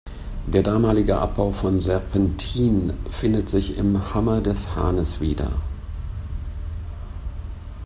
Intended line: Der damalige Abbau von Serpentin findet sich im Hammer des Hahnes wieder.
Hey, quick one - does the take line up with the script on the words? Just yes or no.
yes